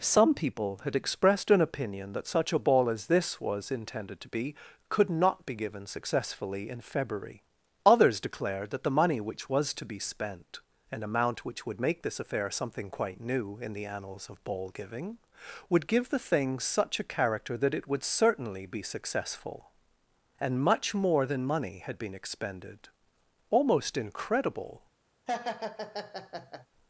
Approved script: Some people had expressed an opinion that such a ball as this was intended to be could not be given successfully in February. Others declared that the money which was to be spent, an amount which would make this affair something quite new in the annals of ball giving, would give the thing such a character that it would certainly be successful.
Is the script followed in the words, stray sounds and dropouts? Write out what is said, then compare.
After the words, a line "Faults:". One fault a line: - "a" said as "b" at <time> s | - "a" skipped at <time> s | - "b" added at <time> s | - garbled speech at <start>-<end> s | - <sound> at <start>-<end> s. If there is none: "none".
Some people had expressed an opinion that such a ball as this was intended to be could not be given successfully in February. Others declared that the money which was to be spent, an amount which would make this affair something quite new in the annals of ball giving, would give the thing such a character that it would certainly be successful. And much more than money had been expended. Almost incredible
Faults:
- "And much more than money had been expended Almost incredible" added at 20.4 s
- laugh at 25.3-26.7 s